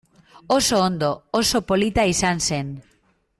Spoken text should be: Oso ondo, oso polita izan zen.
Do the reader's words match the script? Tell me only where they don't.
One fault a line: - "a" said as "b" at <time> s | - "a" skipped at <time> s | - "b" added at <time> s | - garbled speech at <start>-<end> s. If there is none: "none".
none